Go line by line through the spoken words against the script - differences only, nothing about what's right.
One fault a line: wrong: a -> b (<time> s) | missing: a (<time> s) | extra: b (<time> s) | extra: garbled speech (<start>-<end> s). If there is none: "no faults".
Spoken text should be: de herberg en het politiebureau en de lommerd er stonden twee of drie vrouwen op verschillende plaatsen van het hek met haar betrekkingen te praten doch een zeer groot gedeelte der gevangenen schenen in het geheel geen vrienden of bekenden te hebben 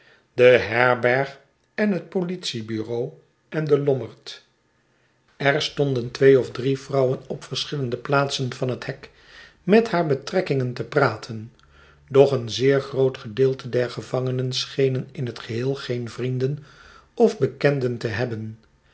no faults